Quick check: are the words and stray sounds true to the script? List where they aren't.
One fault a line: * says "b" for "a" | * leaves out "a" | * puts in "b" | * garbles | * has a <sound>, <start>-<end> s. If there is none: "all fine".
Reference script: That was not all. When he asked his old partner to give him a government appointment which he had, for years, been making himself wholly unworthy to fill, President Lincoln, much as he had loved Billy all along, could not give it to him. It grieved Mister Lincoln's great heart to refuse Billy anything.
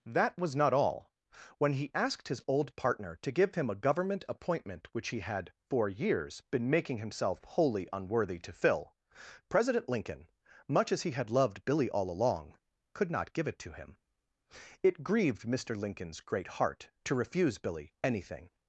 all fine